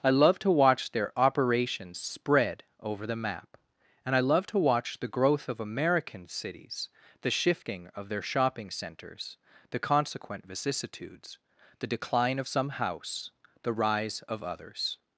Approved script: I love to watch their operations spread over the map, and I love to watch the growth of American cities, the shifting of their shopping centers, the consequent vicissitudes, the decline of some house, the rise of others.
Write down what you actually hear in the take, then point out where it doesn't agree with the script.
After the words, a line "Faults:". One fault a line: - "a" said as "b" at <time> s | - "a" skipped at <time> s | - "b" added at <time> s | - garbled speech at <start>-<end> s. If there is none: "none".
I love to watch their operations spread over the map, and I love to watch the growth of American cities, the shifting of their shopping centers, the consequent vicissitudes, the decline of some house, the rise of others.
Faults:
none